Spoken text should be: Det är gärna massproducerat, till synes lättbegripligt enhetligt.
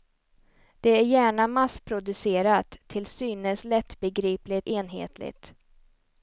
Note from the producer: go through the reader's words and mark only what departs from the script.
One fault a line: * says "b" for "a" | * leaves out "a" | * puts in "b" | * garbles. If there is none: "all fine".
all fine